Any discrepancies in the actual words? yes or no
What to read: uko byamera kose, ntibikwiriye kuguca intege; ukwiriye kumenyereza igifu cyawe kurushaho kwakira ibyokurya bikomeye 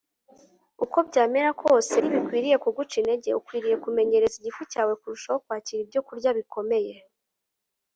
no